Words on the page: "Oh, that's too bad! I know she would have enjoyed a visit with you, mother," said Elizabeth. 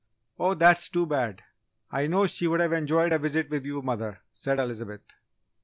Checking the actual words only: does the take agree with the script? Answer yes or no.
yes